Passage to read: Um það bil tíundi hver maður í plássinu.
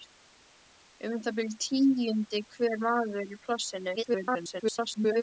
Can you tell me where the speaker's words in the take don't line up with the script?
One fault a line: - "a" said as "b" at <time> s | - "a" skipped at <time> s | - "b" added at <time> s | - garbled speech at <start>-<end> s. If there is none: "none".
- garbled speech at 4.0-5.2 s